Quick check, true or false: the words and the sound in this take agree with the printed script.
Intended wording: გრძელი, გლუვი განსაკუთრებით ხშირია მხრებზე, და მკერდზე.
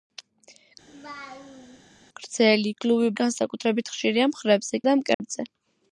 false